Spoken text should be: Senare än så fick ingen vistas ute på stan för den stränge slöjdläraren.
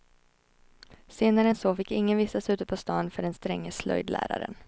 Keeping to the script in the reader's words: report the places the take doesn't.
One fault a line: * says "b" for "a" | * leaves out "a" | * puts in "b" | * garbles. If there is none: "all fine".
all fine